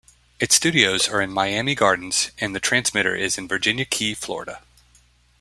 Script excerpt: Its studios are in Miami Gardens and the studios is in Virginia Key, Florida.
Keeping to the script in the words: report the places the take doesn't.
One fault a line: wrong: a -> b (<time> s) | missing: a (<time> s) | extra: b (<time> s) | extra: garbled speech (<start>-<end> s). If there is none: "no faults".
wrong: studios -> transmitter (2.6 s)